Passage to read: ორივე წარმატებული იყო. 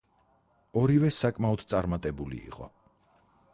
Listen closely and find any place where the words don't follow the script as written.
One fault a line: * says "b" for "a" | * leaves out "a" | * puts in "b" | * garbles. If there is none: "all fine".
* puts in "საკმაოდ"